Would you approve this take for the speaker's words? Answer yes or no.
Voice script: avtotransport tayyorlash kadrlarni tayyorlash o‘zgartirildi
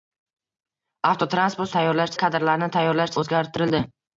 yes